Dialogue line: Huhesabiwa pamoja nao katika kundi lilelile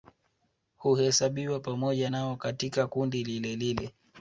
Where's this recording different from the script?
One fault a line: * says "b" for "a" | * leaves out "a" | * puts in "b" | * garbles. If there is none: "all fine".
all fine